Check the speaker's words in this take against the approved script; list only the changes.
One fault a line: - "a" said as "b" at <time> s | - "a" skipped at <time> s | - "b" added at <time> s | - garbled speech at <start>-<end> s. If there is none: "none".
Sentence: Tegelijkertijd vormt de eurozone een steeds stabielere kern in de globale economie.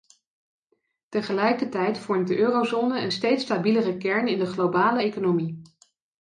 none